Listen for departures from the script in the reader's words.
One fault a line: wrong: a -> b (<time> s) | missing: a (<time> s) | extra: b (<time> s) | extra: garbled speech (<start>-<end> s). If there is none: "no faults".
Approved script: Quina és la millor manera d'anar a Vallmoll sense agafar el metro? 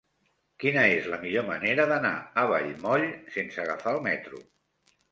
no faults